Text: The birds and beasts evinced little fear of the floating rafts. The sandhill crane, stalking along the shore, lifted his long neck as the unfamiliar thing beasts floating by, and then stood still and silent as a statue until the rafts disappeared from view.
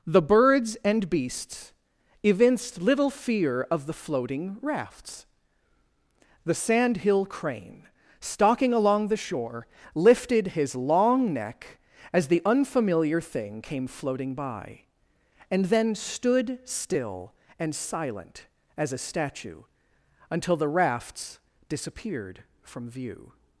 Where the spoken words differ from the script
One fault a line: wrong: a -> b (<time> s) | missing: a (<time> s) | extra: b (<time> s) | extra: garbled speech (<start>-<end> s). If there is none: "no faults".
wrong: beasts -> came (13.6 s)